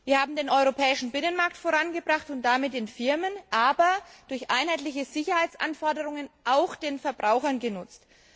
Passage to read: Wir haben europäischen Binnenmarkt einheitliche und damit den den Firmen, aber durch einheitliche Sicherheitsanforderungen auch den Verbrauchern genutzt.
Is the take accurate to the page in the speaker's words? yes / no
no